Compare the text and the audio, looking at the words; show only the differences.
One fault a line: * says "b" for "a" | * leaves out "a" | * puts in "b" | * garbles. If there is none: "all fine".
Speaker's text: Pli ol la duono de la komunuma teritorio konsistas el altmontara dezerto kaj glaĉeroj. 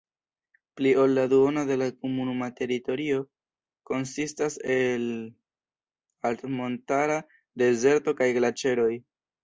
all fine